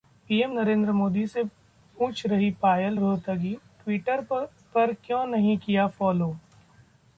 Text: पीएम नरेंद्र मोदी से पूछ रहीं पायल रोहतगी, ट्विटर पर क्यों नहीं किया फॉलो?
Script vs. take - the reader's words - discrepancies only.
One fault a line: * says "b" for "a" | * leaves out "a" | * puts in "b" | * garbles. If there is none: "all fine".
all fine